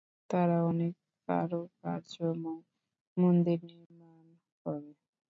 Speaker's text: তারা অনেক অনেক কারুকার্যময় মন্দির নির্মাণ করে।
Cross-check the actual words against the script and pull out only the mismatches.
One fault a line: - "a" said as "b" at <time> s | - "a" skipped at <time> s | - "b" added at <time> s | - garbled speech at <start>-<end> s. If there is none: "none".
- "অনেক" skipped at 0.9 s